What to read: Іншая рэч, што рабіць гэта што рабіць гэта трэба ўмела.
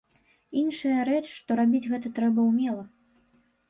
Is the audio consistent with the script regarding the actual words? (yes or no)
no